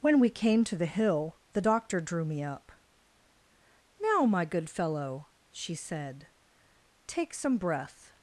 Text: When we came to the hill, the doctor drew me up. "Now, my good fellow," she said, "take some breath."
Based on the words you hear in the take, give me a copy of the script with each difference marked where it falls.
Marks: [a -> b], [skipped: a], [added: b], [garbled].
When we came to the hill, the doctor drew me up. "Now, my good fellow," she said, "take some breath."